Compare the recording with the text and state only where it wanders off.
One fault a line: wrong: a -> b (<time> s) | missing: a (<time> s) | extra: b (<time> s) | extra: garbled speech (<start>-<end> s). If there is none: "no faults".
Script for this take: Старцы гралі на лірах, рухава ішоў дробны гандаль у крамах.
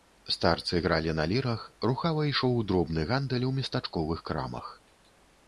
extra: местачковых (3.6 s)